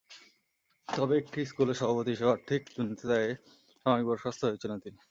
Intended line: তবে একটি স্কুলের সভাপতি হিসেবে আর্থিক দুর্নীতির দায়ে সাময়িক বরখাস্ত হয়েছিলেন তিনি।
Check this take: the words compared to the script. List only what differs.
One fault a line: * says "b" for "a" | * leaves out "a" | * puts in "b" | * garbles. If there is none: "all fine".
all fine